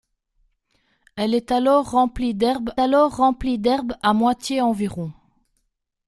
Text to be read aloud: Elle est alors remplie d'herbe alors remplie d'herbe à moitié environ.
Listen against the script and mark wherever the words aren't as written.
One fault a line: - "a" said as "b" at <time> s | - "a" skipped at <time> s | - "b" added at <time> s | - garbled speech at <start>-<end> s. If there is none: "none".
none